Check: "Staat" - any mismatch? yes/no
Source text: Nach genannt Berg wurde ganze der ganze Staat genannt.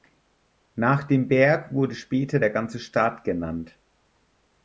no